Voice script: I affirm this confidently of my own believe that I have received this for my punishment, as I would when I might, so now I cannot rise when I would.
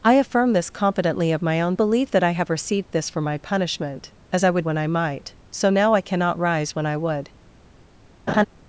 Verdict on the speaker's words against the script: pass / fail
pass